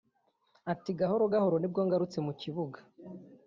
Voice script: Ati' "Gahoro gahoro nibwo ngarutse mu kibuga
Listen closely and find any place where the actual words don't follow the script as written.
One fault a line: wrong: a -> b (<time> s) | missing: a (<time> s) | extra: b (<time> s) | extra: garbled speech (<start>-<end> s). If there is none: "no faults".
no faults